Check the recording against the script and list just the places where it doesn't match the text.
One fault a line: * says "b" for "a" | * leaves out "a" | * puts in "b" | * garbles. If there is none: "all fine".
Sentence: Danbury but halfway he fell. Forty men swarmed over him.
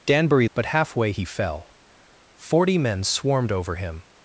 all fine